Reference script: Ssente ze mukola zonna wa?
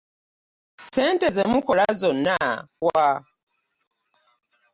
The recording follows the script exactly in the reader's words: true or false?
true